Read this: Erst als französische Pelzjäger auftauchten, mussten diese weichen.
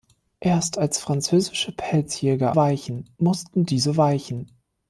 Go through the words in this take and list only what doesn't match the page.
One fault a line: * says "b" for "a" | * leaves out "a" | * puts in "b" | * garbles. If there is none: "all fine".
* says "weichen" for "auftauchten"